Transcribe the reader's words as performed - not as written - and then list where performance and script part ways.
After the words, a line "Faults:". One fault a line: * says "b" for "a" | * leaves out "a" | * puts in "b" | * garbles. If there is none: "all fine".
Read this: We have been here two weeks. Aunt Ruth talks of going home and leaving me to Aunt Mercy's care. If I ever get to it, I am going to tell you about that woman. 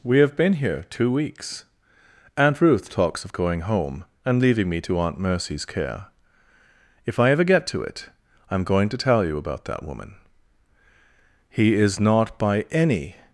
We have been here two weeks. Aunt Ruth talks of going home and leaving me to Aunt Mercy's care. If I ever get to it, I am going to tell you about that woman. He is not by any
Faults:
* puts in "He is not by any"